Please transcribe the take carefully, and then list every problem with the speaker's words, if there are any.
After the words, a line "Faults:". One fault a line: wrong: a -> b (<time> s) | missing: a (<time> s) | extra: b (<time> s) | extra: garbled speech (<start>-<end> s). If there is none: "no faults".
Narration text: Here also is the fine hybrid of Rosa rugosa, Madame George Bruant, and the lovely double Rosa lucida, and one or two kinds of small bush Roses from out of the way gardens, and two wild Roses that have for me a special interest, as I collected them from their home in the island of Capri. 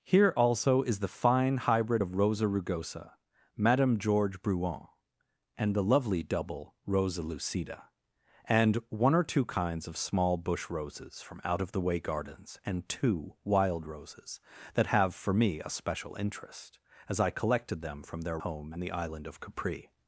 Here also is the fine hybrid of Rosa rugosa, Madame George Bruant, and the lovely double Rosa lucida, and one or two kinds of small bush Roses from out of the way gardens, and two wild Roses that have for me a special interest, as I collected them from their home in the island of Capri.
Faults:
no faults